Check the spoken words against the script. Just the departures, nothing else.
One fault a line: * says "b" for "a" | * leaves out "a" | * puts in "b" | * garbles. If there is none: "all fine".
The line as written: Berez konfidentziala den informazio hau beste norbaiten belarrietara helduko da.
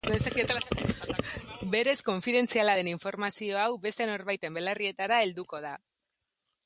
all fine